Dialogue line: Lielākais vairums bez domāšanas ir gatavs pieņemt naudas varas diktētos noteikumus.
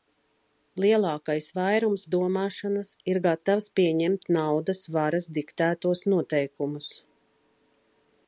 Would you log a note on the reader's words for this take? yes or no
yes